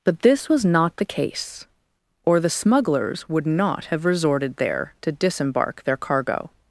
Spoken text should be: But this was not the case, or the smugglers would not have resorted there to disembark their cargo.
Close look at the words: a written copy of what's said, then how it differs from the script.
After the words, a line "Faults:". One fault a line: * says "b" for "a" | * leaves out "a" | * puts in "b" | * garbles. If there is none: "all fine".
But this was not the case, or the smugglers would not have resorted there to disembark their cargo.
Faults:
all fine